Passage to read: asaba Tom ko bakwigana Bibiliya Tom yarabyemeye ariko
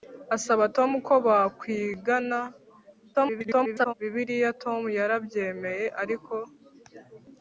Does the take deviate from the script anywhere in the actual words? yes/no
yes